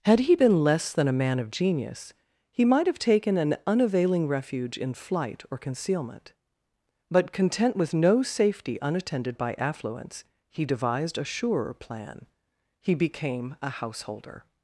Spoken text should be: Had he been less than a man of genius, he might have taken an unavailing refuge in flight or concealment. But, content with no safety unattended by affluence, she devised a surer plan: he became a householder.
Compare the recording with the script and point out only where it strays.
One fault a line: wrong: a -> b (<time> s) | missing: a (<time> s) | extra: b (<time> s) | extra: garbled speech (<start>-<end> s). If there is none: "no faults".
wrong: she -> he (10.5 s)